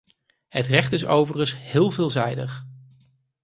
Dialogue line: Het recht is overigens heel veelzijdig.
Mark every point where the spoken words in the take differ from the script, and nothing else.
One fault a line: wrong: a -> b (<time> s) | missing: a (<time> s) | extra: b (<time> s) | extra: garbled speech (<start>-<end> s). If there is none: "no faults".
no faults